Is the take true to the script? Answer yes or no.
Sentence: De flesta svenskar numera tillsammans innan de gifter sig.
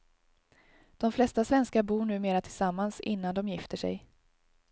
no